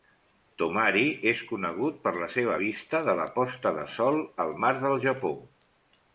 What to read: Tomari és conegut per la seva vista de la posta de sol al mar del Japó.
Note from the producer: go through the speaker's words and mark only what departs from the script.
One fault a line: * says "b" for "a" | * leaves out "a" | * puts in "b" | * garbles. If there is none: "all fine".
all fine